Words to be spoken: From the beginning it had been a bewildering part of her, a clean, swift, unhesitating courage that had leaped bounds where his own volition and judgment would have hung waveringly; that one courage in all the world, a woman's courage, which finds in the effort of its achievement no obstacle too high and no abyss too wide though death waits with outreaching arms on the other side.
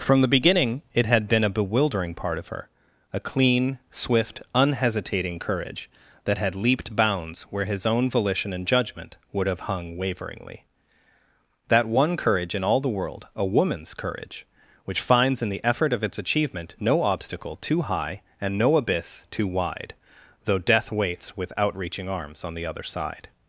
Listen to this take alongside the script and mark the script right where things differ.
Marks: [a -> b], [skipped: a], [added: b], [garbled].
From the beginning it had been a bewildering part of her, a clean, swift, unhesitating courage that had leaped bounds where his own volition and judgment would have hung waveringly; that one courage in all the world, a woman's courage, which finds in the effort of its achievement no obstacle too high and no abyss too wide though death waits with outreaching arms on the other side.